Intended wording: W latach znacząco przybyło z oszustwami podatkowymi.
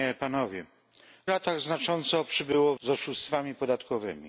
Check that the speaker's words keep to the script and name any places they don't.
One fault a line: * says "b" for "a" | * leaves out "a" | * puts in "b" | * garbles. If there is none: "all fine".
all fine